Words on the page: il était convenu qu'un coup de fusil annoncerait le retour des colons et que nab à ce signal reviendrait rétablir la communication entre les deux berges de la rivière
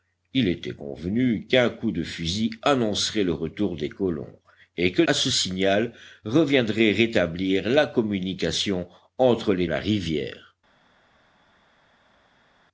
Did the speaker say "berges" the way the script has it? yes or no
no